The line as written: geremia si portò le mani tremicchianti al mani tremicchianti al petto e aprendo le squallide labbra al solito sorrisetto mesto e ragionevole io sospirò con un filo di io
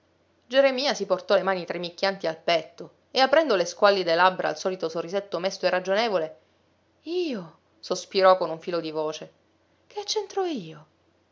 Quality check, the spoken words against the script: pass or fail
fail